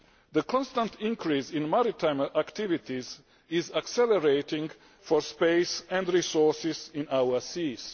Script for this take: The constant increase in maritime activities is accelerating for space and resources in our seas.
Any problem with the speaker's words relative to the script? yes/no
no